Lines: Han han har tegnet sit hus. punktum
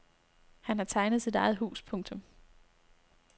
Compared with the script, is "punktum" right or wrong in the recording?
right